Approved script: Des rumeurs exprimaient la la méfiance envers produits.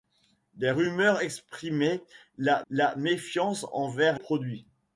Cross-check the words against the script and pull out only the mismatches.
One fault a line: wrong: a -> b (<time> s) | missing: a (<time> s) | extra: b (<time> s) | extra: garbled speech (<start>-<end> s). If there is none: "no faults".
no faults